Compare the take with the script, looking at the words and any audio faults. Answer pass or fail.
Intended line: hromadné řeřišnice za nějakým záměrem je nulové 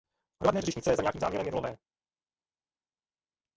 pass